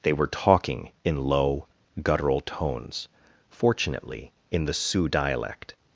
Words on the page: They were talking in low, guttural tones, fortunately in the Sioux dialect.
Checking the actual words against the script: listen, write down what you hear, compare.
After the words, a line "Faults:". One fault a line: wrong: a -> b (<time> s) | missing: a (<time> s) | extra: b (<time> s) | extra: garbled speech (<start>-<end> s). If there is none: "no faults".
They were talking in low, guttural tones, fortunately in the Sioux dialect.
Faults:
no faults